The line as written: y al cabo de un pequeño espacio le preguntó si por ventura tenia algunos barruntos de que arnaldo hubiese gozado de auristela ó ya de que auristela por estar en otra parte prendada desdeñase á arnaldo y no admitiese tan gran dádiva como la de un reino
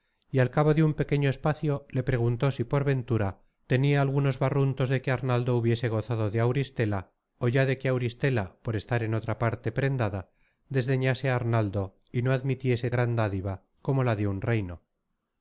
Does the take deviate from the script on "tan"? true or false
true